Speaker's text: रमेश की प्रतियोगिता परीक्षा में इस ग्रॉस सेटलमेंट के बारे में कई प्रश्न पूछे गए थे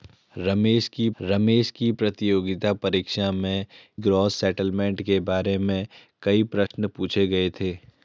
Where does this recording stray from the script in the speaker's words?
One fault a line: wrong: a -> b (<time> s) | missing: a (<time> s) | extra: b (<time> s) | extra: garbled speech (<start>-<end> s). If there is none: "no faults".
extra: रमेश की (1.2 s)
missing: इस (3.7 s)